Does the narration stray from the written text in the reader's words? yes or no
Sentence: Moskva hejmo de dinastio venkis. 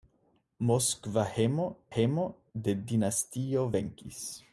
yes